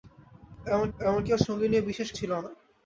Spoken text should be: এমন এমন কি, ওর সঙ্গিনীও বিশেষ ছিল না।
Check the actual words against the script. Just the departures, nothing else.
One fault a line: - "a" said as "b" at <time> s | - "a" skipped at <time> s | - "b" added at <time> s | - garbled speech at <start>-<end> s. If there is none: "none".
none